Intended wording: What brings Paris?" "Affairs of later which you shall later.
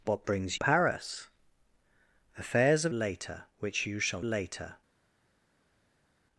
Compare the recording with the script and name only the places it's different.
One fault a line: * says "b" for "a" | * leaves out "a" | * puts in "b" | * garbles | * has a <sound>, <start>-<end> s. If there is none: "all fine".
all fine